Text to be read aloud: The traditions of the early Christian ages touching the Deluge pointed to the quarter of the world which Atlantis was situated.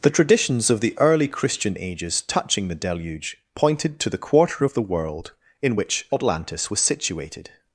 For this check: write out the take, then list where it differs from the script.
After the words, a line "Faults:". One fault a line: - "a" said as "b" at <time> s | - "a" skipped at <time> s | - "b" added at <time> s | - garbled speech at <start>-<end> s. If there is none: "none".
The traditions of the early Christian ages touching the Deluge pointed to the quarter of the world in which Atlantis was situated.
Faults:
- "in" added at 5.6 s